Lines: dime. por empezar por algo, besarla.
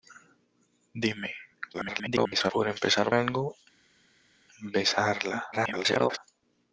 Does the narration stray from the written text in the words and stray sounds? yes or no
yes